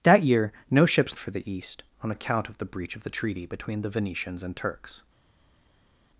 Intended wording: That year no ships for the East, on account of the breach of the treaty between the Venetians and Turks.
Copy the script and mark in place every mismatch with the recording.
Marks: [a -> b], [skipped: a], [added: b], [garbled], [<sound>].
That year no ships for the East, on account of the breach of the treaty between the Venetians and Turks.